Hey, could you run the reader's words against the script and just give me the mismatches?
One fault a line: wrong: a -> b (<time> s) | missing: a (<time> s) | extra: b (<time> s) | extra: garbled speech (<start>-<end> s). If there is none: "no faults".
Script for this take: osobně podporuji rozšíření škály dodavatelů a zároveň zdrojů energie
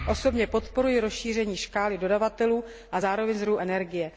no faults